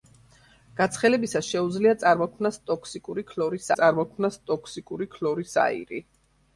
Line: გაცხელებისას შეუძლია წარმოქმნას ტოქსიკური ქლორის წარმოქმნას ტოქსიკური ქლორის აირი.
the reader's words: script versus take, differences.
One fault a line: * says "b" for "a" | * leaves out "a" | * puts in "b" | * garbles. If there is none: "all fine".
all fine